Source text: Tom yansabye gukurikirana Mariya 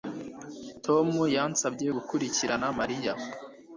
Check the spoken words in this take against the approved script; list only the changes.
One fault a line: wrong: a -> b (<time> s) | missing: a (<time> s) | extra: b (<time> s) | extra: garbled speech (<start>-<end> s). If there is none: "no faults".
no faults